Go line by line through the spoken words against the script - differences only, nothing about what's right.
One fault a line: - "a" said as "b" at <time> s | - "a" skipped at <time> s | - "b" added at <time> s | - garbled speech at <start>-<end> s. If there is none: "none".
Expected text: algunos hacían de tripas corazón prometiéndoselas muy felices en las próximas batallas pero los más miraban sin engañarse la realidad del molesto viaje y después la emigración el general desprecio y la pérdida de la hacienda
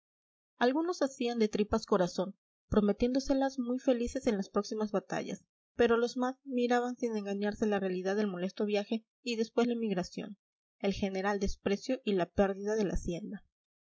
none